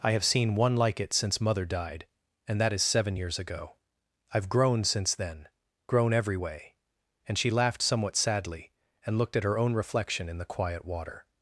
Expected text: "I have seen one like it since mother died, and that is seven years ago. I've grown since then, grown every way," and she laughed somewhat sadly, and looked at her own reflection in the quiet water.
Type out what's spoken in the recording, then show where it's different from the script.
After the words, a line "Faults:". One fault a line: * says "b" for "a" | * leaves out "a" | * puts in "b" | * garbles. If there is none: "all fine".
"I have seen one like it since mother died, and that is seven years ago. I've grown since then, grown every way," and she laughed somewhat sadly, and looked at her own reflection in the quiet water.
Faults:
all fine